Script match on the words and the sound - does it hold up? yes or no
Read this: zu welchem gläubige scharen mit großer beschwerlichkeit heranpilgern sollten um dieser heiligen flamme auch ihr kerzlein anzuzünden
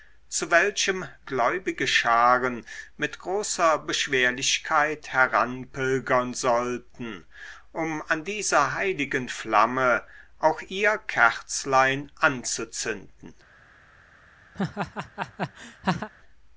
no